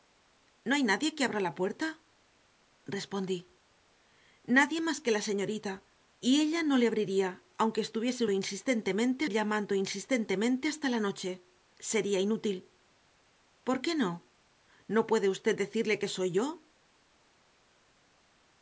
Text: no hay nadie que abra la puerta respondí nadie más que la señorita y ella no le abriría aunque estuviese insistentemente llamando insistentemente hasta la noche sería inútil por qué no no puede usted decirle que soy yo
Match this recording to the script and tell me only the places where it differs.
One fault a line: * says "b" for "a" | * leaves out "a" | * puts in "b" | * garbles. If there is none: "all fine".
all fine